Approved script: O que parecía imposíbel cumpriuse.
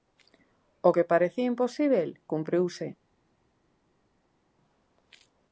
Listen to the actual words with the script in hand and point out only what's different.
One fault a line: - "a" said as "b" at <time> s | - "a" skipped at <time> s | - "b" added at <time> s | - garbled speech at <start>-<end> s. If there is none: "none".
none